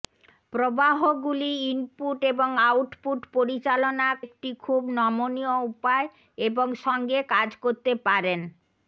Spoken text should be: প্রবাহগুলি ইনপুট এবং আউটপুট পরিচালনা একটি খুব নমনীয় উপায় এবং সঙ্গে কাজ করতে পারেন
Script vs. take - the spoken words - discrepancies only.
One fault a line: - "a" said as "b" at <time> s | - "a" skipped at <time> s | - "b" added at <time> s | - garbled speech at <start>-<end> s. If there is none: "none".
none